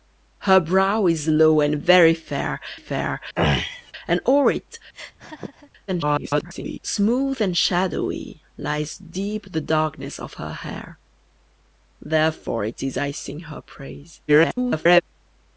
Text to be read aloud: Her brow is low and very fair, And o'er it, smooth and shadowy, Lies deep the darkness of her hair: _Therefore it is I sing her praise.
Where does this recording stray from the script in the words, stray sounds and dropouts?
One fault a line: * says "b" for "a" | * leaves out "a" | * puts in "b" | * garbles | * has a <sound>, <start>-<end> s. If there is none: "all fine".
* puts in "fair"
* has a throat clearing, 3.4-3.9 s
* has a laugh, 4.9-5.7 s
* garbles
* garbles